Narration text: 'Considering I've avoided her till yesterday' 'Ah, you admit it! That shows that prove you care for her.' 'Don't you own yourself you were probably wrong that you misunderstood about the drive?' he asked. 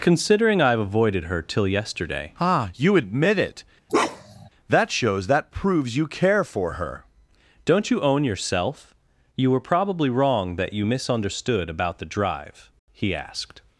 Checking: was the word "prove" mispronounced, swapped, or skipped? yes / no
yes